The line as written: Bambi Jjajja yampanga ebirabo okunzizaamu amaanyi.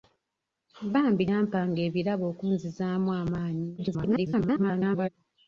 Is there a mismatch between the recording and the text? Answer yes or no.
yes